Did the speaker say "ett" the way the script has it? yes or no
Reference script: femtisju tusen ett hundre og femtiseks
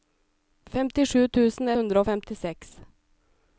no